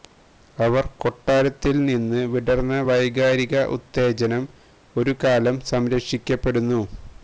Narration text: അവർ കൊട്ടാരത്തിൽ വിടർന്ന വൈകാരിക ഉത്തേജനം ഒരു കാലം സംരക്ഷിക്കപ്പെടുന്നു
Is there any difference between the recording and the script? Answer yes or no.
yes